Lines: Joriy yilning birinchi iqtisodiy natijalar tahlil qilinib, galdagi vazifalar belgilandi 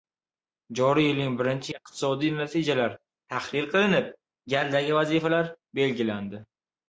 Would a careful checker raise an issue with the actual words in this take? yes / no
no